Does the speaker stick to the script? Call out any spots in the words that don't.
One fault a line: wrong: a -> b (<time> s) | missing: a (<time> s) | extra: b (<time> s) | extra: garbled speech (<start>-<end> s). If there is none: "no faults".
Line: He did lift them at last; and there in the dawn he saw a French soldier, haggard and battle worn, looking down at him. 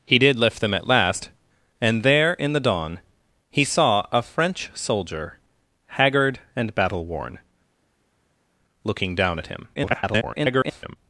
extra: garbled speech (9.7-11.0 s)